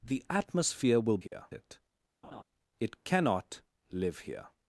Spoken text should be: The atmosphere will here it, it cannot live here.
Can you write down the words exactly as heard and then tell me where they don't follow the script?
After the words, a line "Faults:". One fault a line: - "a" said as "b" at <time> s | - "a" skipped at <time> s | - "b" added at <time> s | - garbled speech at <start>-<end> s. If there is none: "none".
The atmosphere will here it, it cannot live here.
Faults:
none